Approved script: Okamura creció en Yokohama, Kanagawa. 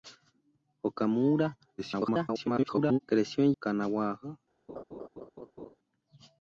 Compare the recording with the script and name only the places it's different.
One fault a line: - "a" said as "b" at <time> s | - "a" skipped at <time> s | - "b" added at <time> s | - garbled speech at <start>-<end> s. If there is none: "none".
- garbled speech at 1.8-3.0 s
- "Yokohama" skipped at 3.5 s